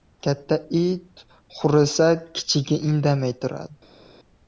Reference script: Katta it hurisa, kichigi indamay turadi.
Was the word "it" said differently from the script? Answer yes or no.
no